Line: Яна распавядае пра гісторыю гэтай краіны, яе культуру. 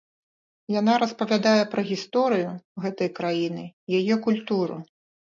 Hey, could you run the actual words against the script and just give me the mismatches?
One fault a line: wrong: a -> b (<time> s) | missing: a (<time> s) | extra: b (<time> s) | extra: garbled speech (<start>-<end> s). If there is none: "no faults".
no faults